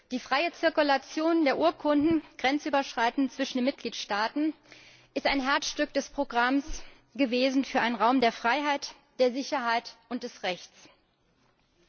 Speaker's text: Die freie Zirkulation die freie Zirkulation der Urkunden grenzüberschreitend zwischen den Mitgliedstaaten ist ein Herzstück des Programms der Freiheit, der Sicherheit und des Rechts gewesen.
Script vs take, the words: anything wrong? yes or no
yes